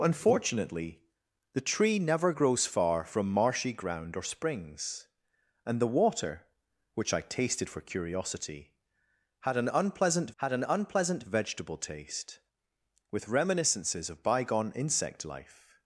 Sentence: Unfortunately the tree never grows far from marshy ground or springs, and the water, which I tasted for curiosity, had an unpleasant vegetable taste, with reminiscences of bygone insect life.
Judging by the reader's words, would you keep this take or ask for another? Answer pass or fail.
fail